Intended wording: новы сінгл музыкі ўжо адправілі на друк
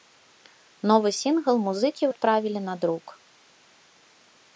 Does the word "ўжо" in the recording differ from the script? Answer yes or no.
yes